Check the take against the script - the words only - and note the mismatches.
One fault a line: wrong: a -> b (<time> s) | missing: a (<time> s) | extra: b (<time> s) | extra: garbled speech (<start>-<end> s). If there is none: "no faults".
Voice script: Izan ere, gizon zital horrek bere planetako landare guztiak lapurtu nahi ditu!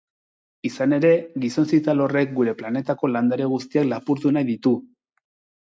wrong: bere -> gure (2.4 s)